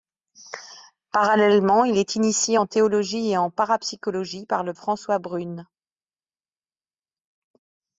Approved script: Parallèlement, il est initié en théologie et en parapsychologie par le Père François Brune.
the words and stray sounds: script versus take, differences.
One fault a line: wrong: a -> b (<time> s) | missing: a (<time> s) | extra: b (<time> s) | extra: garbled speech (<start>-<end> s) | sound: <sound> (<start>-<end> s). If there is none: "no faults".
missing: Père (4.7 s)